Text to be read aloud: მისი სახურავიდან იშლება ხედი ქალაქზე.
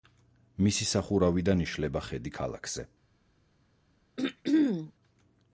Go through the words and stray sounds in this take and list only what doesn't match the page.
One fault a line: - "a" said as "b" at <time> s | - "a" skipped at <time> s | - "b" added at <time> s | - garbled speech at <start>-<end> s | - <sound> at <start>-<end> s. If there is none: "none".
- throat clearing at 4.2-4.9 s